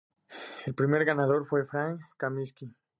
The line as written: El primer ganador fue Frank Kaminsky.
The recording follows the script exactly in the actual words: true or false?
true